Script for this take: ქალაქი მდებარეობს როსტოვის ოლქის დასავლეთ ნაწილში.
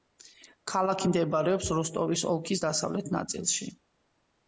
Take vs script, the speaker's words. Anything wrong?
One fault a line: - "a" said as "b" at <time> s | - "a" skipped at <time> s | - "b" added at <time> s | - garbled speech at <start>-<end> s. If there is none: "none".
none